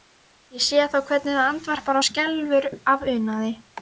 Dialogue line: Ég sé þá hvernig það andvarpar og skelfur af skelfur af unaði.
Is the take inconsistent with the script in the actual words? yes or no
yes